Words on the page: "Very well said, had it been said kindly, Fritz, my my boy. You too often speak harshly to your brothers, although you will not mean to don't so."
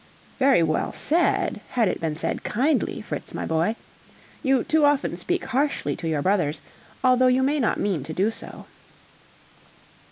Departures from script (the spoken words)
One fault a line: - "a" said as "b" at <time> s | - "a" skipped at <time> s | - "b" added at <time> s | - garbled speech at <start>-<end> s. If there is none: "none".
- "my" skipped at 3.5 s
- "will" said as "may" at 7.4 s
- "don't" said as "do" at 8.1 s